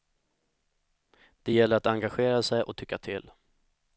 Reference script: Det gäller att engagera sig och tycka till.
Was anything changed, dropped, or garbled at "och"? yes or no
no